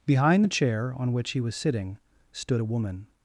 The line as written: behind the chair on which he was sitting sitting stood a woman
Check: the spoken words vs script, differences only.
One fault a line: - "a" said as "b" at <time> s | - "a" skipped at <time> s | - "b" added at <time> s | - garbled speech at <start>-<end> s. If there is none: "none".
- "sitting" skipped at 2.0 s